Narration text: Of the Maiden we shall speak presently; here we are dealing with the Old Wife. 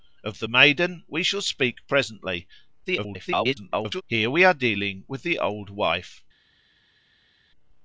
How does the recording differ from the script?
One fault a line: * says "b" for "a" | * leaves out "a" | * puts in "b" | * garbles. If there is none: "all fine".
* garbles